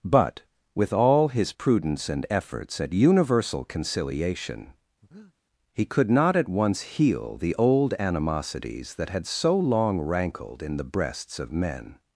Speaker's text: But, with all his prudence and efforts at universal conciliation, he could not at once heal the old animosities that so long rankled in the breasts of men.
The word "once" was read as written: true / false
true